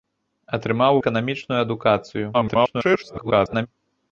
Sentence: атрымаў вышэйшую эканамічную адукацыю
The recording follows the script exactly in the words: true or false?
false